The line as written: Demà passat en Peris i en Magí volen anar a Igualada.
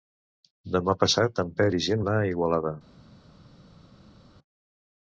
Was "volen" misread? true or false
true